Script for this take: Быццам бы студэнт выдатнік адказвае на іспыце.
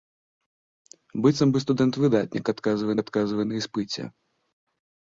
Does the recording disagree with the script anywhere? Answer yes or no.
yes